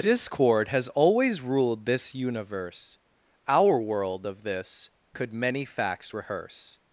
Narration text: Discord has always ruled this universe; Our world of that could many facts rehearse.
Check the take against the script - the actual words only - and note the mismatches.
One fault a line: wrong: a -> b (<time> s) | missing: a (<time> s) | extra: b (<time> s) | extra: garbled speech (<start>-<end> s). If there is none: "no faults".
wrong: that -> this (4.4 s)